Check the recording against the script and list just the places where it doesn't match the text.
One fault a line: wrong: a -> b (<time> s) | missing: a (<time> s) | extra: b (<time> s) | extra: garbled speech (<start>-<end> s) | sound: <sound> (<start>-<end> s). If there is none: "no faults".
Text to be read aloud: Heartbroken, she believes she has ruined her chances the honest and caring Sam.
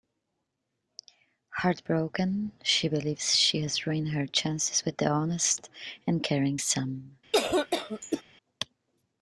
extra: with (4.8 s)
sound: cough (7.3-8.2 s)